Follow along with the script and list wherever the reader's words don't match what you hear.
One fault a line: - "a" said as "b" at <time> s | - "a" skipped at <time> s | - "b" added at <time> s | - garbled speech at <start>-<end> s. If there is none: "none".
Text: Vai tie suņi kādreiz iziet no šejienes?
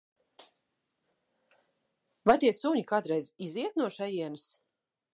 none